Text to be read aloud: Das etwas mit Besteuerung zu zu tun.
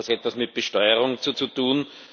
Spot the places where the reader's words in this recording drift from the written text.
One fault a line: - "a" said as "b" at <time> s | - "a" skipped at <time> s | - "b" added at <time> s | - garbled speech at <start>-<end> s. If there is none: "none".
none